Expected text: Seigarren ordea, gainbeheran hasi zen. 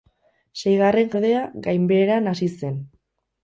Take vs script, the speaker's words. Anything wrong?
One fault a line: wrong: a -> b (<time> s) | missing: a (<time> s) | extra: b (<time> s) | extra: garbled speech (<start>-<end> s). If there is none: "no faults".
no faults